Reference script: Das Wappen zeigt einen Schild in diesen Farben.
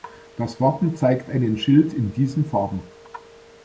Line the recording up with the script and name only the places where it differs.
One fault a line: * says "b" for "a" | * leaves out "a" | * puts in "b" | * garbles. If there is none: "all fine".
all fine